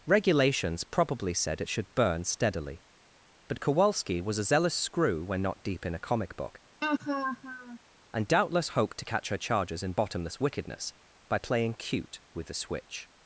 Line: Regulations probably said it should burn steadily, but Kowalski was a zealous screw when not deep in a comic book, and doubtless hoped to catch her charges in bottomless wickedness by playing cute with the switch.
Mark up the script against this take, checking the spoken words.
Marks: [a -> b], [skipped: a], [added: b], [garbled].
Regulations probably said it should burn steadily, but Kowalski was a zealous screw when not deep in a comic book, and doubtless hoped to catch her charges in bottomless wickedness by playing cute with the switch.